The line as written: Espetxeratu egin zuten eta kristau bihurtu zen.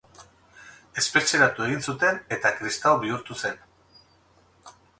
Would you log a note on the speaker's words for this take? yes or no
no